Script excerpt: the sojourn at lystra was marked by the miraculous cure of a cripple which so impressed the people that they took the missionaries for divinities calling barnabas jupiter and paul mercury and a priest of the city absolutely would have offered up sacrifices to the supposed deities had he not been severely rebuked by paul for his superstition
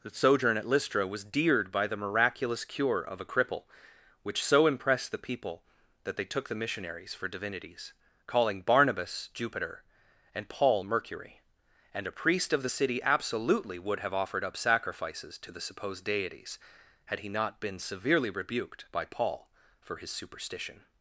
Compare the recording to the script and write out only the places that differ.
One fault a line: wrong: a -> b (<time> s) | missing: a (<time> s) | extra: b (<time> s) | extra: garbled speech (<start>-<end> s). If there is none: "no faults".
wrong: marked -> deared (1.2 s)